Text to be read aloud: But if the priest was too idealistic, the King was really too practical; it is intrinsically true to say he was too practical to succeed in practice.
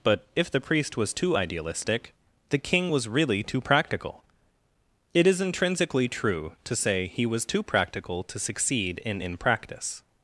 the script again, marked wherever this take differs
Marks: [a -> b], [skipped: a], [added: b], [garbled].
But if the priest was too idealistic, the King was really too practical; it is intrinsically true to say he was too practical to succeed in [added: in] practice.